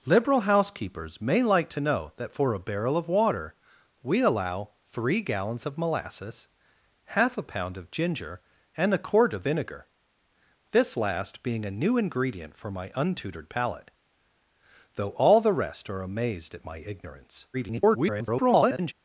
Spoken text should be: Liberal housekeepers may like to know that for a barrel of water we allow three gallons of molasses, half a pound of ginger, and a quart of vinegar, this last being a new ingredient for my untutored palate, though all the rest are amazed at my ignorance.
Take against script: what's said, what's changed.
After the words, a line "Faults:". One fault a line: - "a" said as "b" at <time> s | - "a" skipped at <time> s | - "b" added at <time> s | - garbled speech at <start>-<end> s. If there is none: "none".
Liberal housekeepers may like to know that for a barrel of water we allow three gallons of molasses, half a pound of ginger, and a quart of vinegar, this last being a new ingredient for my untutored palate, though all the rest are amazed at my ignorance. [garbled]
Faults:
- garbled speech at 17.5-18.9 s